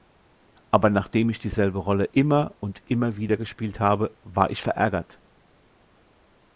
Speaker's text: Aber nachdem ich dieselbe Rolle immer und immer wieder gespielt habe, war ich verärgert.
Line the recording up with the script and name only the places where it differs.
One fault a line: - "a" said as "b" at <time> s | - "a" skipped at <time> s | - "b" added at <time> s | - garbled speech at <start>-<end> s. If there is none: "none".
none